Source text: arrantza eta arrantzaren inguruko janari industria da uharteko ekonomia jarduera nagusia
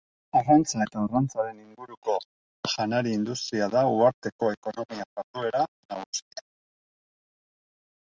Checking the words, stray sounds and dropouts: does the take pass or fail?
pass